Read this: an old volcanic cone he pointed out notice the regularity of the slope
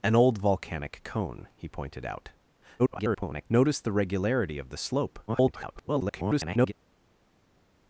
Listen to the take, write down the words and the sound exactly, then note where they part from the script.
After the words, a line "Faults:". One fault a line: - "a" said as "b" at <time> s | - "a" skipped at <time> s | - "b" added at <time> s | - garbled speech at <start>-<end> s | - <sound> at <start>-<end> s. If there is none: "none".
an old volcanic cone he pointed out [garbled] notice the regularity of the slope [garbled]
Faults:
- garbled speech at 2.8-3.5 s
- garbled speech at 5.3-6.7 s